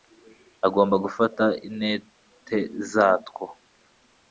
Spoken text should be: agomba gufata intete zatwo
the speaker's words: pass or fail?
pass